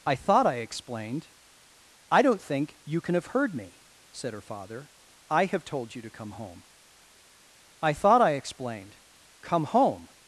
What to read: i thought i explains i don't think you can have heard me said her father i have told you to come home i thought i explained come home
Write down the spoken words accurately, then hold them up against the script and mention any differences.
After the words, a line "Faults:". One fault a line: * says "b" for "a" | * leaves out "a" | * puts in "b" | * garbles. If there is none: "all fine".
i thought i explained i don't think you can have heard me said her father i have told you to come home i thought i explained come home
Faults:
* says "explained" for "explains"